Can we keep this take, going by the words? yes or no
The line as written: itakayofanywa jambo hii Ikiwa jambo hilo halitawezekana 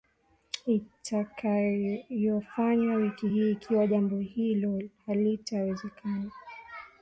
no